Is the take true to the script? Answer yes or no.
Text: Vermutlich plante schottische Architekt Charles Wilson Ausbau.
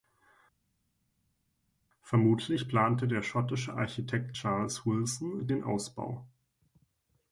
no